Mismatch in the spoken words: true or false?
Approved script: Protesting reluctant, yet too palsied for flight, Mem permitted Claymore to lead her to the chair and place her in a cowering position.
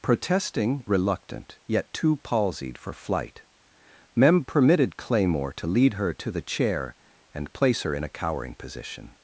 false